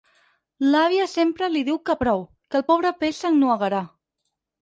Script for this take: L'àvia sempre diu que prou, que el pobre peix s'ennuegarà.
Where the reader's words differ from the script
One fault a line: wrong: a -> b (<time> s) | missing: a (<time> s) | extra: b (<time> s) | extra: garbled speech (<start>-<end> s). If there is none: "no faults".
extra: li (1.5 s)